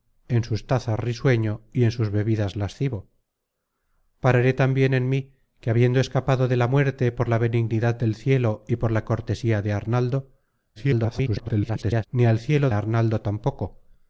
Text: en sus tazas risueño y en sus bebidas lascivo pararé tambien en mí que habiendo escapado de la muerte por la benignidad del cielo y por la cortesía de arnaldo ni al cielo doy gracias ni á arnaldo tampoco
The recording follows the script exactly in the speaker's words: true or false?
false